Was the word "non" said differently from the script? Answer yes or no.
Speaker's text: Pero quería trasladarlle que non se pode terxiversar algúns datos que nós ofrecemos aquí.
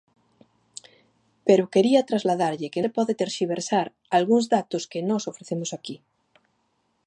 yes